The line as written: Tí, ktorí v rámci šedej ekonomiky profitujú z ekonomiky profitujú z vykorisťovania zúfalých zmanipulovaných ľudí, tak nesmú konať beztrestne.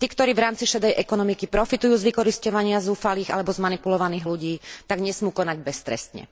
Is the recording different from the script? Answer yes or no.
yes